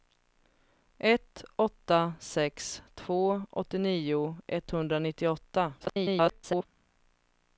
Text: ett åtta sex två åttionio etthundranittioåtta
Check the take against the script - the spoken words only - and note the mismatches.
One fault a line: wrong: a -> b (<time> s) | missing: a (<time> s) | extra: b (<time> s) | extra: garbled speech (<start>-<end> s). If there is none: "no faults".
extra: garbled speech (5.8-6.7 s)